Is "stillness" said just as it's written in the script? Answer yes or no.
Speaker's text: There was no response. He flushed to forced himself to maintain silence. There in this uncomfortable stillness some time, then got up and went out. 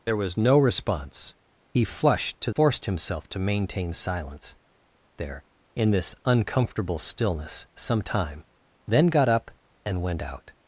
yes